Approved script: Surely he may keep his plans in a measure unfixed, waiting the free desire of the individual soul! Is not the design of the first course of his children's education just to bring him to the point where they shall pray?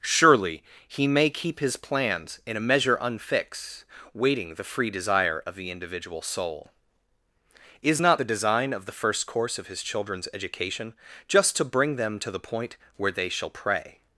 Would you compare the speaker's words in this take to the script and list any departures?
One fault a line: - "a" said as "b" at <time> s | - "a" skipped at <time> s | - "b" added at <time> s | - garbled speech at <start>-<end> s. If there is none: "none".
- "him" said as "them" at 12.0 s